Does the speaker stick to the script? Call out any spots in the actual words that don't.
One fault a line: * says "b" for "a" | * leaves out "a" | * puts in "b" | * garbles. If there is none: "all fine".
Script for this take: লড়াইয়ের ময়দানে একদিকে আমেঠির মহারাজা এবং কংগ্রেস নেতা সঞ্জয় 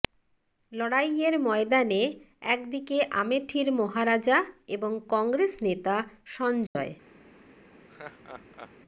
all fine